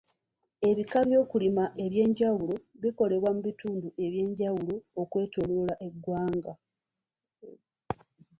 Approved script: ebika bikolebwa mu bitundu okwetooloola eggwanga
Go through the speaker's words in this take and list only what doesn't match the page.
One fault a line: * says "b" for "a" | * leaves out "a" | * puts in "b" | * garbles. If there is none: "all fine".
* puts in "by'okulima eby'enjawulo"
* puts in "eby'enjawulo"